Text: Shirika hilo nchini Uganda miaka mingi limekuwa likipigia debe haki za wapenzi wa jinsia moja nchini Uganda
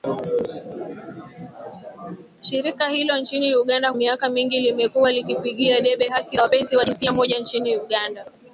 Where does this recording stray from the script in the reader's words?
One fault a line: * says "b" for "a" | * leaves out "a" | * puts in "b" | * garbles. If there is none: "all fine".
all fine